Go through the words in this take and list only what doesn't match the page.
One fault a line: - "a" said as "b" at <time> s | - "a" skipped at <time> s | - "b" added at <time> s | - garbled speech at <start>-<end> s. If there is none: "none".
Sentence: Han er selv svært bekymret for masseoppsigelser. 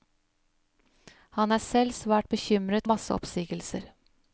- "for" skipped at 2.9 s